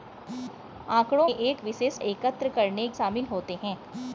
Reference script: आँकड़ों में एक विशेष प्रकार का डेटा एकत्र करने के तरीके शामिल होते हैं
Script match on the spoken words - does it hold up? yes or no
no